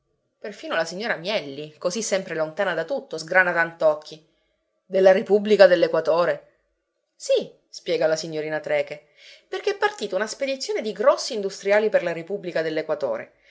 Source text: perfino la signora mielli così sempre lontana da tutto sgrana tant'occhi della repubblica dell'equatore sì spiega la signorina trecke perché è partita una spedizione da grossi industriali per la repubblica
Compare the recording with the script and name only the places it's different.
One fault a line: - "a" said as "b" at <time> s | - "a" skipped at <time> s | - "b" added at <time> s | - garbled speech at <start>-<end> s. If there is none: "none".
- "da" said as "di" at 10.8 s